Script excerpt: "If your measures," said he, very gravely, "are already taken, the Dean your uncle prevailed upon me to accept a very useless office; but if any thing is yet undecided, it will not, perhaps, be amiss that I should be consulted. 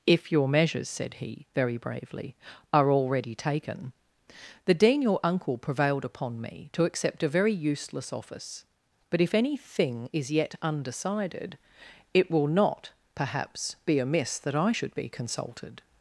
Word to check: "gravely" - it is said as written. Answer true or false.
false